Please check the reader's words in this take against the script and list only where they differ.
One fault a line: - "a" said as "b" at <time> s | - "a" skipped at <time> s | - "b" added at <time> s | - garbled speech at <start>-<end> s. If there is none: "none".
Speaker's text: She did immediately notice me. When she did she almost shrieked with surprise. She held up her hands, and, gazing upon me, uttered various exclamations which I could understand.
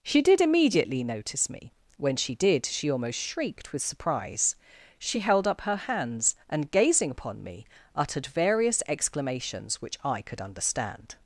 none